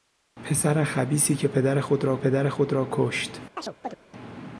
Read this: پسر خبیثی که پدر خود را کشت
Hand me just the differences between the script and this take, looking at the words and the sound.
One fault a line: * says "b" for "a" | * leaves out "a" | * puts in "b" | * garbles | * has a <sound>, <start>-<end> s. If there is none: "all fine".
* puts in "پدر خود را"
* has a chirp, 3.6-4.0 s